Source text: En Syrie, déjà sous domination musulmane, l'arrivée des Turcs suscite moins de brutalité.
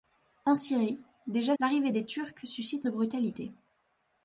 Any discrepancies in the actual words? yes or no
yes